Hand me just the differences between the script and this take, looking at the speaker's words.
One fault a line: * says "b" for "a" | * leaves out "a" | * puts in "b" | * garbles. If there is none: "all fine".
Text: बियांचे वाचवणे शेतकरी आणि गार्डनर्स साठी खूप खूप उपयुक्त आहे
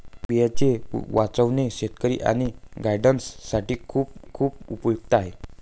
all fine